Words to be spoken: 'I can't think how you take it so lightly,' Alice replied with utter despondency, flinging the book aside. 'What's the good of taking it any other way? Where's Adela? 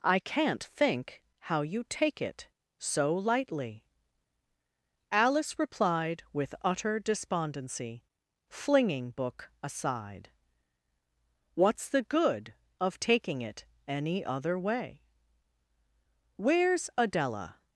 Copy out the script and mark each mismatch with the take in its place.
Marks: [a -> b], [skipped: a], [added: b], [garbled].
'I can't think how you take it so lightly,' Alice replied with utter despondency, flinging [skipped: the] book aside. 'What's the good of taking it any other way? Where's Adela?